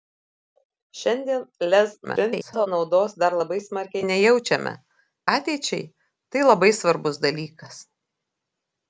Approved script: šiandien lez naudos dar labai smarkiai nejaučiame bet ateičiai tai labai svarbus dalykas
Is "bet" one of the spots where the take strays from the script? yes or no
yes